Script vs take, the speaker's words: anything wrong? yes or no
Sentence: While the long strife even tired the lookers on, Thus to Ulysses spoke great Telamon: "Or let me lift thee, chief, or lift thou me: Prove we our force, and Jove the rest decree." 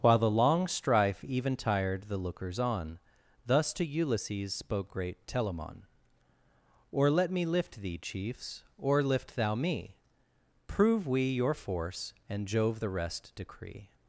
yes